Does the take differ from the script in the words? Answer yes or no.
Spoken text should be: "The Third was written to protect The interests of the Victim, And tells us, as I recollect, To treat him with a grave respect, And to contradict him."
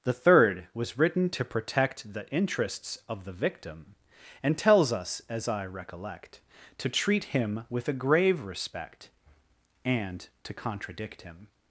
no